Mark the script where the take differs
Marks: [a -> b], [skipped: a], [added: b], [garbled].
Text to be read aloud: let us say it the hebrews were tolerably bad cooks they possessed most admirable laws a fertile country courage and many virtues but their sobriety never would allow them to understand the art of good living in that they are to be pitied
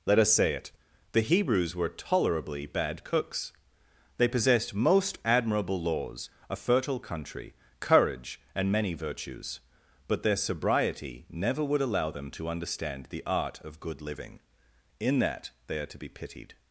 let us say it the hebrews were tolerably bad cooks they possessed most admirable laws a fertile country courage and many virtues but their sobriety never would allow them to understand the art of good living in that they are to be pitied